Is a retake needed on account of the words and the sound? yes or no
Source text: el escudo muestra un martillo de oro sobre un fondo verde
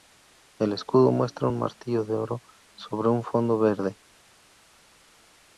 no